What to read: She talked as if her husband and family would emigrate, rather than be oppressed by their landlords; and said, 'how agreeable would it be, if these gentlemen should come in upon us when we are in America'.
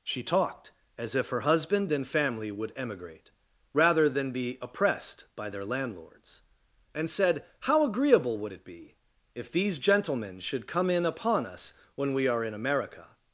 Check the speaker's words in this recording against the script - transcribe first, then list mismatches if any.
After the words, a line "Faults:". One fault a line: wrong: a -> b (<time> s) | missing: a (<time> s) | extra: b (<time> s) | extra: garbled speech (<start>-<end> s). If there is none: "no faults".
She talked as if her husband and family would emigrate, rather than be oppressed by their landlords; and said, 'how agreeable would it be, if these gentlemen should come in upon us when we are in America'.
Faults:
no faults